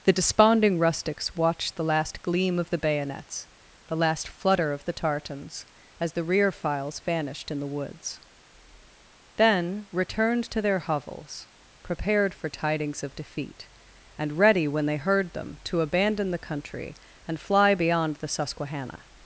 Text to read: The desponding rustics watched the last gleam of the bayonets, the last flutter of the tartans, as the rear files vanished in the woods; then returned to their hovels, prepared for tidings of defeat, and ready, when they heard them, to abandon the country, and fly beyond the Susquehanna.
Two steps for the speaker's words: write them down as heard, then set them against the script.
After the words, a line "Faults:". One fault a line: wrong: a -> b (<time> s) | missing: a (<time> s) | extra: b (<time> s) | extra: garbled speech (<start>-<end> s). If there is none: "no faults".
The desponding rustics watched the last gleam of the bayonets, the last flutter of the tartans, as the rear files vanished in the woods; then returned to their hovels, prepared for tidings of defeat, and ready, when they heard them, to abandon the country, and fly beyond the Susquehanna.
Faults:
no faults